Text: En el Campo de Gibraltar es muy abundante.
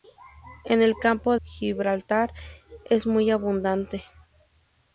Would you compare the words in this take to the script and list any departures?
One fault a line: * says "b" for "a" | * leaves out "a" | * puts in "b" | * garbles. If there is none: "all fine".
* leaves out "de"